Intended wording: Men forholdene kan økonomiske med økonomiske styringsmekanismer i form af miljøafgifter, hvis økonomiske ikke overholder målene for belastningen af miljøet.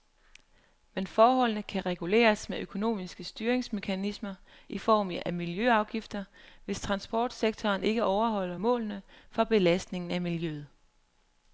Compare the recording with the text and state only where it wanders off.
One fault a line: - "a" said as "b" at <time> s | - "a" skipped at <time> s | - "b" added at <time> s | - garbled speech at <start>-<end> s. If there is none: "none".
- "økonomiske" said as "reguleres" at 1.9 s
- "økonomiske" said as "transportsektoren" at 6.8 s